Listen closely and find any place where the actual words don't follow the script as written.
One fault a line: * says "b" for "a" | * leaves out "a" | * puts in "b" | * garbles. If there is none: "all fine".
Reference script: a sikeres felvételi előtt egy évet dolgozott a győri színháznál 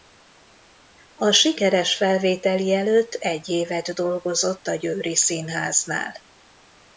all fine